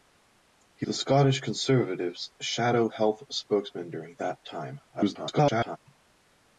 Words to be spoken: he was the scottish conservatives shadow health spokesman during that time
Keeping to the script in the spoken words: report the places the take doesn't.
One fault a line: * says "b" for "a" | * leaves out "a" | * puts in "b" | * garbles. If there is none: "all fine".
* leaves out "was"
* garbles